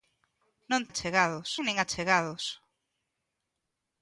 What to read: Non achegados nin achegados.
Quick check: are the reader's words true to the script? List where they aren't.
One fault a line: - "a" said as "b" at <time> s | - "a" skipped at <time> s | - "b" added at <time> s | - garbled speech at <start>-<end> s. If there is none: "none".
none